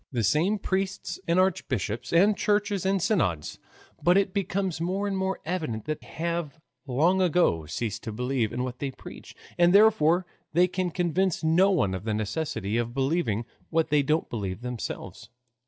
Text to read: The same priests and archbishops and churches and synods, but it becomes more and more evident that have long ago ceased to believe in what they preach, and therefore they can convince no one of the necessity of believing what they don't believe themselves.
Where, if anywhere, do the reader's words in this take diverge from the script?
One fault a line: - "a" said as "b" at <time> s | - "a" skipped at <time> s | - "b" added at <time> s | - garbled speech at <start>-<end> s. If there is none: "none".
none